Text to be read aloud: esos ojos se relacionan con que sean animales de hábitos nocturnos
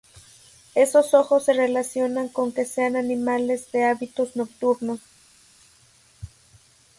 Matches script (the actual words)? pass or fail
pass